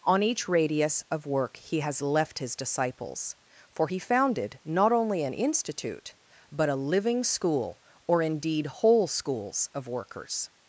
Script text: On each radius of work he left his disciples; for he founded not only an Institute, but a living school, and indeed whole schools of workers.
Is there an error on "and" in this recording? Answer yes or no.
yes